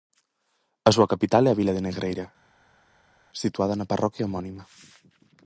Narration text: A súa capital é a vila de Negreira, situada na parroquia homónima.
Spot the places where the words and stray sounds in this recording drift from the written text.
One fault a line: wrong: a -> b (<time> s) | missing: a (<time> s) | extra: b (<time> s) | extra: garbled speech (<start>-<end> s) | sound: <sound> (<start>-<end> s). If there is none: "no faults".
no faults